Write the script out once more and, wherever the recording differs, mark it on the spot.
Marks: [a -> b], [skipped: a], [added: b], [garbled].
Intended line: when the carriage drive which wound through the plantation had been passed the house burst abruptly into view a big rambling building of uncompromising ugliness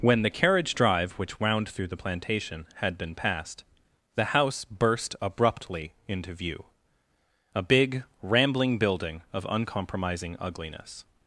when the carriage drive which wound through the plantation had been passed the house burst abruptly into view a big rambling building of uncompromising ugliness